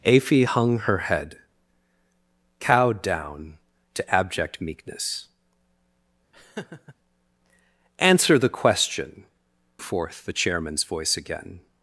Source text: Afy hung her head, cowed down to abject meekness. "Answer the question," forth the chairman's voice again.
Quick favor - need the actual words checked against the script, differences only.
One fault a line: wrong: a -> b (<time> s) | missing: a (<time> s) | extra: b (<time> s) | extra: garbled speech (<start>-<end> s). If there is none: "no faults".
no faults